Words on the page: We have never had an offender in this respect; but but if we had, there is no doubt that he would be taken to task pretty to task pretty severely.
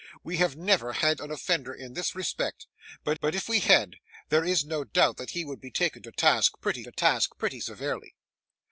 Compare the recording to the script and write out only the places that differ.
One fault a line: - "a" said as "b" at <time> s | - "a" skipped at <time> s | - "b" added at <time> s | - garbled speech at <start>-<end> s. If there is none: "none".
none